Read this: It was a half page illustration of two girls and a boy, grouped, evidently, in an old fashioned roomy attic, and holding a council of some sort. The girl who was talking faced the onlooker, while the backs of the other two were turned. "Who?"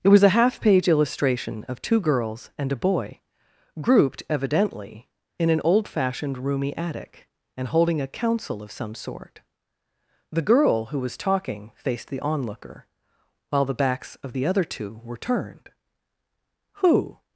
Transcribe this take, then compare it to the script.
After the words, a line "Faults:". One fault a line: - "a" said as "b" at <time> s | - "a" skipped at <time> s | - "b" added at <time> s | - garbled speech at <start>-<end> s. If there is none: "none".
It was a half page illustration of two girls and a boy, grouped, evidently, in an old fashioned roomy attic, and holding a council of some sort. The girl who was talking faced the onlooker, while the backs of the other two were turned. "Who?"
Faults:
none